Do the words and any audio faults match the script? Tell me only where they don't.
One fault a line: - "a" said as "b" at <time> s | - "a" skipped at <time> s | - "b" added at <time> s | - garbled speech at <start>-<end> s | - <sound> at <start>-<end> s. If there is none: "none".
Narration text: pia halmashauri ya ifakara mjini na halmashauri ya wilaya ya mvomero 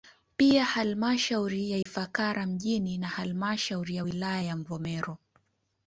- dropout at 1.8-1.9 s